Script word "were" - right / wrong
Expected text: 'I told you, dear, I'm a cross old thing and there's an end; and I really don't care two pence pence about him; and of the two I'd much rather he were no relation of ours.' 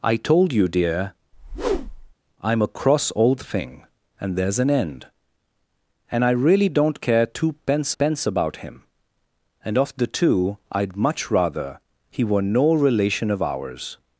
right